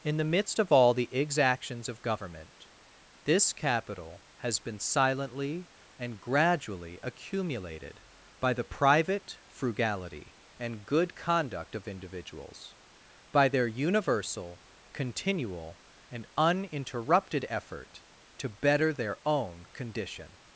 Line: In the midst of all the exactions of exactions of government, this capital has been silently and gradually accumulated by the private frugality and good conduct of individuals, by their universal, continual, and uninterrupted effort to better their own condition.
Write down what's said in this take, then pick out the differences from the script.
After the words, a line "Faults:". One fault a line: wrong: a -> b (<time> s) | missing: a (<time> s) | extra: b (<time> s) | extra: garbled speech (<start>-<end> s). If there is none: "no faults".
In the midst of all the exactions of government, this capital has been silently and gradually accumulated by the private frugality and good conduct of individuals, by their universal, continual, and uninterrupted effort to better their own condition.
Faults:
missing: exactions of (2.0 s)